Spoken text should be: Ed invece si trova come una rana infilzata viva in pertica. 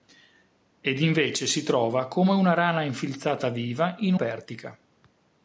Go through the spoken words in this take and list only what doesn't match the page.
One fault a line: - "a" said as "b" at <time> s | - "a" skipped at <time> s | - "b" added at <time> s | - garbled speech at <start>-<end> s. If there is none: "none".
none